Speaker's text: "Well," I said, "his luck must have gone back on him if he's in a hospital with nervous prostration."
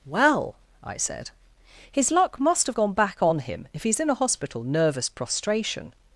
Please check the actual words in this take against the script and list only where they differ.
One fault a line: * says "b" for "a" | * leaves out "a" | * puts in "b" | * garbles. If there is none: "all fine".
* leaves out "with"